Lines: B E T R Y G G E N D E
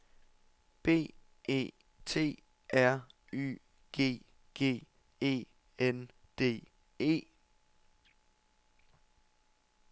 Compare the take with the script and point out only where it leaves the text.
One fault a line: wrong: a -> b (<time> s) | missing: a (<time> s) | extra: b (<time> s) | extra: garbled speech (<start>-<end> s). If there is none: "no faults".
no faults